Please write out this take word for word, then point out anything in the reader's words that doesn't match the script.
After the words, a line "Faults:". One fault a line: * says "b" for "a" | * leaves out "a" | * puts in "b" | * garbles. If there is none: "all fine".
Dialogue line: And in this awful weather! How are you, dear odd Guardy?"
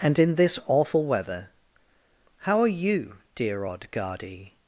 And in this awful weather! How are you, dear odd Guardy?"
Faults:
all fine